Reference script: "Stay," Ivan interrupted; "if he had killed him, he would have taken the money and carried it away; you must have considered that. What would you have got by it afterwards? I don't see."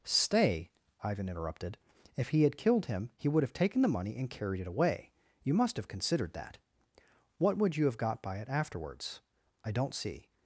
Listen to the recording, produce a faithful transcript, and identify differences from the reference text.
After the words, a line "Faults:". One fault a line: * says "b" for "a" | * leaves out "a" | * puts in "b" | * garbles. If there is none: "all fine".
"Stay," Ivan interrupted; "if he had killed him, he would have taken the money and carried it away; you must have considered that. What would you have got by it afterwards? I don't see."
Faults:
all fine